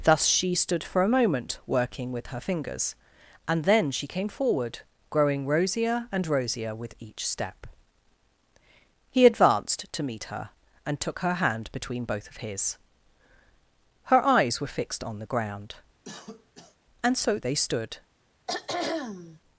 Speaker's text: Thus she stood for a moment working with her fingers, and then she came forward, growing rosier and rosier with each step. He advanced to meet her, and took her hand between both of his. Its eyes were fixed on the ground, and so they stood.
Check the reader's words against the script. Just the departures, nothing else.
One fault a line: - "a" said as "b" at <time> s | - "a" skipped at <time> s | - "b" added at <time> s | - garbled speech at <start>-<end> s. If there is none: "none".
- "Its" said as "Her" at 14.1 s